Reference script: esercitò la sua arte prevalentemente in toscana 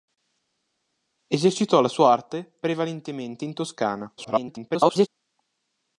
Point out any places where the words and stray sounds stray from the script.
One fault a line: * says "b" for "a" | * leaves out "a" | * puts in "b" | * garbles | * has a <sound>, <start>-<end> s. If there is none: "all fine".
* garbles